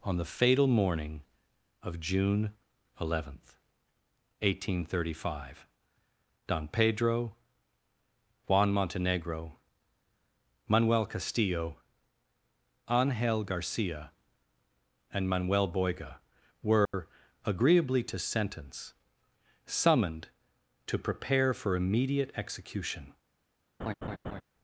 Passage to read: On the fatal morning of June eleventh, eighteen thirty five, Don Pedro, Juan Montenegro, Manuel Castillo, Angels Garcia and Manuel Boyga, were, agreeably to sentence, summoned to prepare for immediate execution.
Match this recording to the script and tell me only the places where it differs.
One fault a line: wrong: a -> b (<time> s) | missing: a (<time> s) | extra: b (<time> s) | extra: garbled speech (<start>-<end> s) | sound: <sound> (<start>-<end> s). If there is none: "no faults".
wrong: Angels -> Angel (12.9 s)
sound: dropout (16.8-16.9 s)
sound: laugh (23.8-24.4 s)